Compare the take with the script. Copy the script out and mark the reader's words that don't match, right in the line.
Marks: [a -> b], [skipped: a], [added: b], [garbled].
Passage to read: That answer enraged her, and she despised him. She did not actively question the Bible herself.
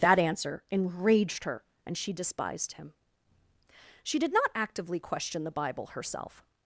That answer enraged her, and she despised him. She did not actively question the Bible herself.